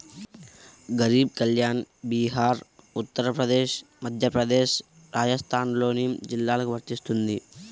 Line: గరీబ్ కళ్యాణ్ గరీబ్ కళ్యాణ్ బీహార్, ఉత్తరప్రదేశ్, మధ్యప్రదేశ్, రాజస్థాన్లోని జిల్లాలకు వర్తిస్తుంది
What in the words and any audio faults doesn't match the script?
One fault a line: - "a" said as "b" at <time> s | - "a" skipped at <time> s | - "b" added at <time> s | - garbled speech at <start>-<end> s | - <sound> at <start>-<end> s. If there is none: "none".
- "గరీబ్ కళ్యాణ్" skipped at 1.8 s